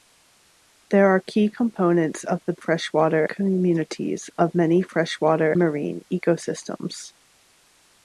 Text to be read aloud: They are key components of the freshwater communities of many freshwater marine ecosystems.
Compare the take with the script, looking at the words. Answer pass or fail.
pass